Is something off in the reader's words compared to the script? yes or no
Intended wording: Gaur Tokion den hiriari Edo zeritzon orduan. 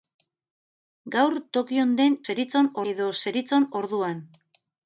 yes